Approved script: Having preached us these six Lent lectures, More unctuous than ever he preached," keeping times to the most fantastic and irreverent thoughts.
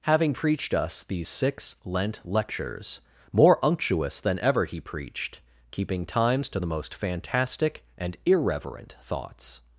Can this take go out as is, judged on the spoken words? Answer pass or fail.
pass